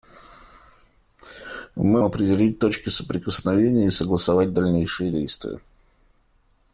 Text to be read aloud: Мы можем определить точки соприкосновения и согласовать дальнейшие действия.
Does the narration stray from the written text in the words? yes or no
yes